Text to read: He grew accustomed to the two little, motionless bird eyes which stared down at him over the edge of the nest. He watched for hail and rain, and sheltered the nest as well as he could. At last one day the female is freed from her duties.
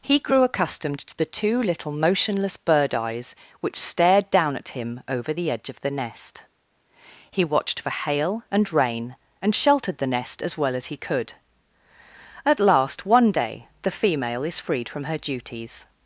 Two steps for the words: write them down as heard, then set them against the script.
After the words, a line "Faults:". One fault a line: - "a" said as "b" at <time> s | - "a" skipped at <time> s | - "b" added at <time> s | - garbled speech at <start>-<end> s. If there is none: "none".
He grew accustomed to the two little, motionless bird eyes which stared down at him over the edge of the nest. He watched for hail and rain, and sheltered the nest as well as he could. At last one day the female is freed from her duties.
Faults:
none